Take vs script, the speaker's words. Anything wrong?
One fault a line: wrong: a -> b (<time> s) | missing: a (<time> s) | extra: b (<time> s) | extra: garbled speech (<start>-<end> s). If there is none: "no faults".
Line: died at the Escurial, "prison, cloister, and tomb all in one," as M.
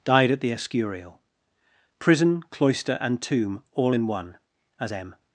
no faults